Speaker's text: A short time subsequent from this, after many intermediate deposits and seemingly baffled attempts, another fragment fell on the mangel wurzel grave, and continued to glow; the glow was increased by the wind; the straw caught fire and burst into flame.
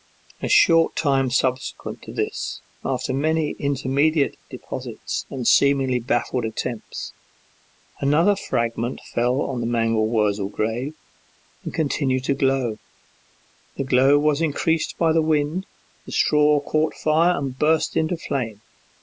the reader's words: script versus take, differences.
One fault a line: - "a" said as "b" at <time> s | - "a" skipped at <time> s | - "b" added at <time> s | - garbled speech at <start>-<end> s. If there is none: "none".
- "from" said as "to" at 2.0 s